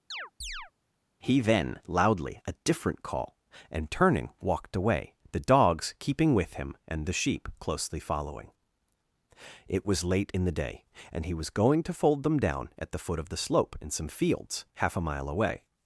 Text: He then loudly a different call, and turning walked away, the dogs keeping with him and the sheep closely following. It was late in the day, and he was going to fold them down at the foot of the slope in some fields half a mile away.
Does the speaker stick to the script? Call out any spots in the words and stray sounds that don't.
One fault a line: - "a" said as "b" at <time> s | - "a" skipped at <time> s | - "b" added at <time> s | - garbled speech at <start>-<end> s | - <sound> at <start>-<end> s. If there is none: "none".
- chirp at 0.1-0.7 s